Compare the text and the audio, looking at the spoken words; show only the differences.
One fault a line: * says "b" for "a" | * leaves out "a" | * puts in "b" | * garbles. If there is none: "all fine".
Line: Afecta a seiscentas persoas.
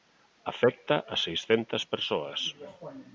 all fine